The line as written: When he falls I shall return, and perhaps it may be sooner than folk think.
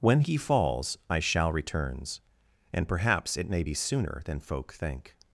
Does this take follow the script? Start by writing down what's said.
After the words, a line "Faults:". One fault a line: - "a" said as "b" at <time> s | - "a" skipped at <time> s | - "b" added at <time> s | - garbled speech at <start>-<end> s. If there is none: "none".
When he falls I shall returns, and perhaps it may be sooner than folk think.
Faults:
- "return" said as "returns" at 1.5 s